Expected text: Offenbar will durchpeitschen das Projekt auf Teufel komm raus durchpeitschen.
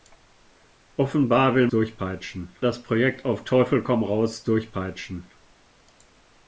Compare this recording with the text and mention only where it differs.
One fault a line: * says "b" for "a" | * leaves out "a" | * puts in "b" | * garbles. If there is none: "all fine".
all fine